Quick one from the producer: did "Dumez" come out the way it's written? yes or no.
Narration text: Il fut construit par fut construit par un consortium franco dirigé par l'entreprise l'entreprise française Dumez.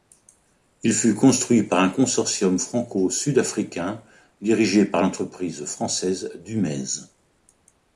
yes